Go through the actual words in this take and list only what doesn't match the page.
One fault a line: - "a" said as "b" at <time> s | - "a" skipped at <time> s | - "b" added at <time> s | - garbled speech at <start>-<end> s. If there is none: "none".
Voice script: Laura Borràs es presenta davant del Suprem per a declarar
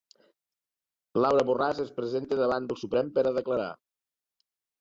none